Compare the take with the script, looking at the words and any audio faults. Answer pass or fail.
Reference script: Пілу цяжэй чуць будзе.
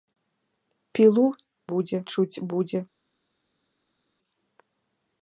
fail